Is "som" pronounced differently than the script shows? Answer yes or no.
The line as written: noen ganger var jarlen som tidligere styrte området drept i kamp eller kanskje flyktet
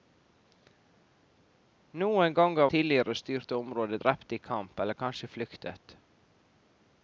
yes